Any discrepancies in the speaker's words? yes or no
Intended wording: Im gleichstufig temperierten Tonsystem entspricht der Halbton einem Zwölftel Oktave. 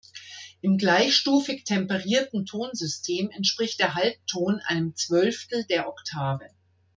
yes